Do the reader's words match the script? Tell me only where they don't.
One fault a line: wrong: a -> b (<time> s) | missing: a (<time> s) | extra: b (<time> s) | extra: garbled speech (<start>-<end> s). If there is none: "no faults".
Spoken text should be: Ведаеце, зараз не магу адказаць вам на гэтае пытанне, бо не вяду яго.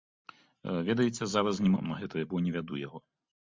missing: магу адказаць (1.7 s)
missing: пытанне (2.2 s)